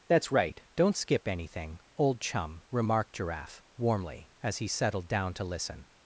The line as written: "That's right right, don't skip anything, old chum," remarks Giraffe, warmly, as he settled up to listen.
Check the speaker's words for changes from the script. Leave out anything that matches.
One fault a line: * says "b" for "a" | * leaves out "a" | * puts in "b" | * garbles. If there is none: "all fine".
* leaves out "right"
* says "remarked" for "remarks"
* says "down" for "up"